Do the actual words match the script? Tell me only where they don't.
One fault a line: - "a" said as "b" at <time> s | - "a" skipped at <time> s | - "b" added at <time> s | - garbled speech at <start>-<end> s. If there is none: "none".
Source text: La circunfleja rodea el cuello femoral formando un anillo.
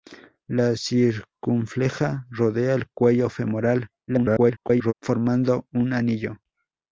- garbled speech at 4.1-4.9 s